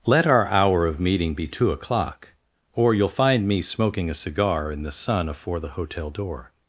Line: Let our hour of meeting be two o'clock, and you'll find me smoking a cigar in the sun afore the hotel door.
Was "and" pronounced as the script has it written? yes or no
no